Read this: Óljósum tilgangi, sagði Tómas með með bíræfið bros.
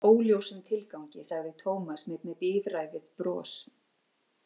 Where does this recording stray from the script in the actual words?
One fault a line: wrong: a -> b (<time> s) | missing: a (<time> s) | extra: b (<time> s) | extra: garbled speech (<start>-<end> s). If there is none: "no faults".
no faults